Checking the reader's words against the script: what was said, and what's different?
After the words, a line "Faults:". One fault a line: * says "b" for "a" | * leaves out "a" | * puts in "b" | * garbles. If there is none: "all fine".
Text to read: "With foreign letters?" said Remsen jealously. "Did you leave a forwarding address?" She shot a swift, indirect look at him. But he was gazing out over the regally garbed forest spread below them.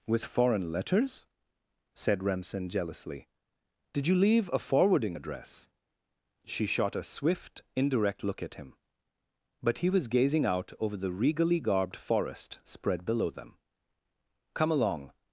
"With foreign letters?" said Remsen jealously. "Did you leave a forwarding address?" She shot a swift, indirect look at him. But he was gazing out over the regally garbed forest spread below them. "Come along
Faults:
* puts in "Come along"